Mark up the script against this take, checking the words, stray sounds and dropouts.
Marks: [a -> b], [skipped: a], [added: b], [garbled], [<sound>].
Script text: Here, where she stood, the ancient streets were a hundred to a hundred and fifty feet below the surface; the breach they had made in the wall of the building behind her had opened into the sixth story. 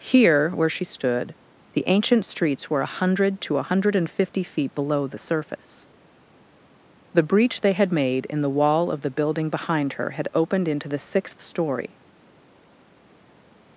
Here, where she stood, the ancient streets were a hundred to a hundred and fifty feet below the surface; the breach they had made in the wall of the building behind her had opened into the sixth story.